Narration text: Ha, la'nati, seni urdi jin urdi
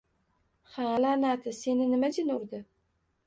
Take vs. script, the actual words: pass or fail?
fail